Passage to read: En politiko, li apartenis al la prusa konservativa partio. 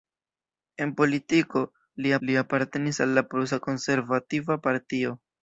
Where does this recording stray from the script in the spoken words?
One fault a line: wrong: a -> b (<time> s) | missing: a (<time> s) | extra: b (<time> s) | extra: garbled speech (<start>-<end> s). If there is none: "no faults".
extra: li (2.3 s)